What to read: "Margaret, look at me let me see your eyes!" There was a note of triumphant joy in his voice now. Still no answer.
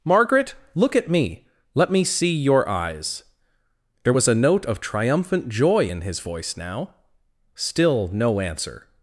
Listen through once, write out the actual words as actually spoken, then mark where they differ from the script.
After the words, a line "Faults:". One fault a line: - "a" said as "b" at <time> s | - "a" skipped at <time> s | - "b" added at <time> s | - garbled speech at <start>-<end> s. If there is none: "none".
"Margaret, look at me let me see your eyes!" There was a note of triumphant joy in his voice now. Still no answer.
Faults:
none